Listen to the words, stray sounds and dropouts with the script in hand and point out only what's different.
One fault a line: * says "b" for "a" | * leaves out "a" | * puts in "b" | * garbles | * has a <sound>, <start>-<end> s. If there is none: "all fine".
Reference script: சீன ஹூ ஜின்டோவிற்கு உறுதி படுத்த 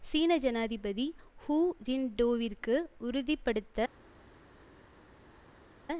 * puts in "ஜனாதிபதி"